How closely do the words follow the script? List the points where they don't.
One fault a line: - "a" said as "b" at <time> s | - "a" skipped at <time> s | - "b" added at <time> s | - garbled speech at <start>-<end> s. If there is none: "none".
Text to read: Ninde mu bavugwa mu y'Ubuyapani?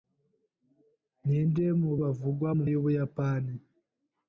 none